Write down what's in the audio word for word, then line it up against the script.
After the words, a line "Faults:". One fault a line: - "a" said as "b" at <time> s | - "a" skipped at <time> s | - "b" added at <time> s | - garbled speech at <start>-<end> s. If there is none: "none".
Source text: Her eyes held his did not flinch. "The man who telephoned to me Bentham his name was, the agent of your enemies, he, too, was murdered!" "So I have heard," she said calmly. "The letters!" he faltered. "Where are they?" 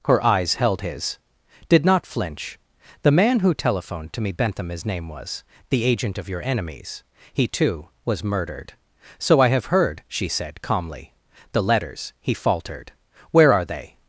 Her eyes held his did not flinch. "The man who telephoned to me Bentham his name was, the agent of your enemies, he, too, was murdered!" "So I have heard," she said calmly. "The letters!" he faltered. "Where are they?"
Faults:
none